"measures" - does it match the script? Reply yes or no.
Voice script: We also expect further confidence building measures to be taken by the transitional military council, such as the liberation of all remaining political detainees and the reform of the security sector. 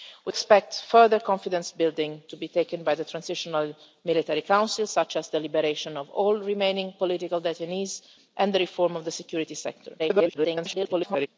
no